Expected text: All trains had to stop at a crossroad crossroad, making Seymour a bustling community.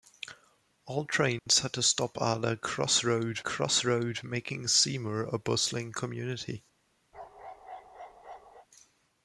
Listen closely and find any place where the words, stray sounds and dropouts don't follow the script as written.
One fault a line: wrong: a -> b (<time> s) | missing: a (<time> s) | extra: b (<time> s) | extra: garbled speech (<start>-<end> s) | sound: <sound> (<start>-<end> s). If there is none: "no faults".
sound: dropout (1.4-1.5 s)
sound: bark (7.1-8.7 s)